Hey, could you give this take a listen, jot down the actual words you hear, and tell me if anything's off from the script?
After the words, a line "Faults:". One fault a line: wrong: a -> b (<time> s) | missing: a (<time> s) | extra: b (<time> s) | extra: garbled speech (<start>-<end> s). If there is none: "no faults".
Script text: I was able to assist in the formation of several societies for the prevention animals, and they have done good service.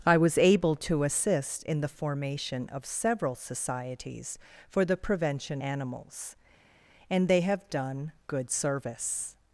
I was able to assist in the formation of several societies for the prevention animals, and they have done good service.
Faults:
no faults